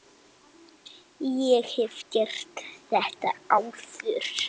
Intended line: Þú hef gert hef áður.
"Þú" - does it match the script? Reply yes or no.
no